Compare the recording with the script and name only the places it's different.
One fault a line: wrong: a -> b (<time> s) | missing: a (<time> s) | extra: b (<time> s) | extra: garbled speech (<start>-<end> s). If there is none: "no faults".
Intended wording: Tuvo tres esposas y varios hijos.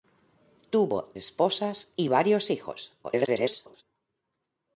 missing: tres (1.1 s)
extra: garbled speech (3.0-3.8 s)